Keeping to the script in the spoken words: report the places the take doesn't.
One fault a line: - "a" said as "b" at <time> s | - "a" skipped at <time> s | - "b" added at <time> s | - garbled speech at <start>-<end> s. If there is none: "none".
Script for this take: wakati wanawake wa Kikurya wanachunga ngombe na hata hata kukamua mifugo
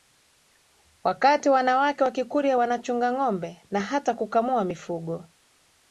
- "hata" skipped at 4.1 s